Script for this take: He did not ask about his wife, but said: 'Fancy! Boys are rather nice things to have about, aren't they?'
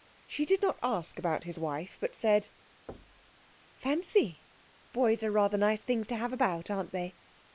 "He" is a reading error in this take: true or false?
true